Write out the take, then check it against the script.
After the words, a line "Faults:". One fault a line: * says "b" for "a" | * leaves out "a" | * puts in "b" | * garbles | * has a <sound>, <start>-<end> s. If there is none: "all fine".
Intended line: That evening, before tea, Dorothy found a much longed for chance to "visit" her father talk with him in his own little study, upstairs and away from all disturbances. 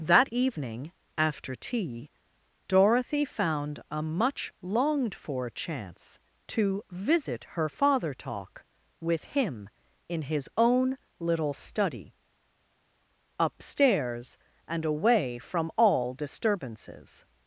That evening, after tea, Dorothy found a much longed for chance to "visit" her father talk with him in his own little study, upstairs and away from all disturbances.
Faults:
* says "after" for "before"